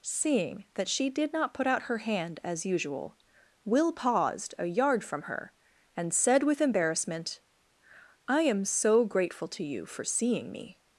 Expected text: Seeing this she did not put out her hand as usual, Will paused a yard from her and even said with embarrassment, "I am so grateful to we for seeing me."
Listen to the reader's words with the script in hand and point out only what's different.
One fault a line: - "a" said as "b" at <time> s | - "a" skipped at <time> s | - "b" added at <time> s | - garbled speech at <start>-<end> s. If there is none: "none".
- "this" said as "that" at 0.7 s
- "even" skipped at 6.1 s
- "we" said as "you" at 9.6 s